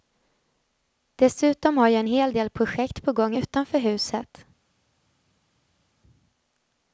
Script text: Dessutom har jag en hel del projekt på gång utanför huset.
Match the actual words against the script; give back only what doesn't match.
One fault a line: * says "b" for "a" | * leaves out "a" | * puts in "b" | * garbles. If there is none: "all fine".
all fine